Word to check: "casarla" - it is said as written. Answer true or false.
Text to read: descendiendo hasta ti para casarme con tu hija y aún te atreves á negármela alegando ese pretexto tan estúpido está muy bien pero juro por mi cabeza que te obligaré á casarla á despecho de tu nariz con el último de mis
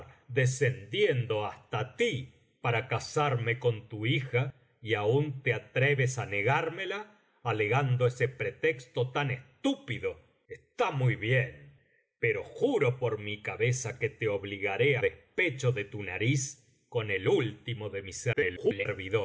false